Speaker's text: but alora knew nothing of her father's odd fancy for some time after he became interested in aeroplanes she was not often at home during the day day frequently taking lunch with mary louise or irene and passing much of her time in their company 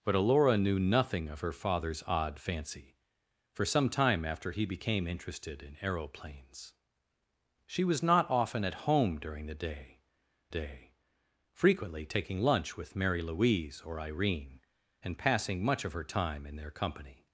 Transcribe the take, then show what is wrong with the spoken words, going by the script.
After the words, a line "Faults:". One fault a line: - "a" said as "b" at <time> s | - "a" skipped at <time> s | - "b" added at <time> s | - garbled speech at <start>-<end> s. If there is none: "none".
but alora knew nothing of her father's odd fancy for some time after he became interested in aeroplanes she was not often at home during the day day frequently taking lunch with mary louise or irene and passing much of her time in their company
Faults:
none